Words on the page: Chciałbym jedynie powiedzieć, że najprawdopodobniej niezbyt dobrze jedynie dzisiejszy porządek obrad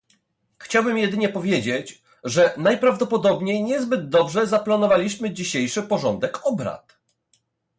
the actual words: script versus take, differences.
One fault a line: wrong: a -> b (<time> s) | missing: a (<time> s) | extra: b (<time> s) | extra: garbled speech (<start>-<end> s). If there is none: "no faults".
wrong: jedynie -> zaplanowaliśmy (4.5 s)